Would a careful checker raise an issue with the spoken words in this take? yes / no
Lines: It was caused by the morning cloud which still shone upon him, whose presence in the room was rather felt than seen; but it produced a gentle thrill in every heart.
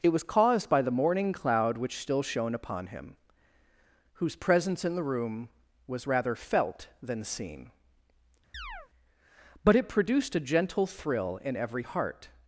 no